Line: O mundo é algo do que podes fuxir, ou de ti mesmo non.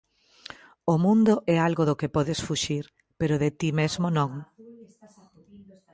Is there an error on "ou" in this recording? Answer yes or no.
yes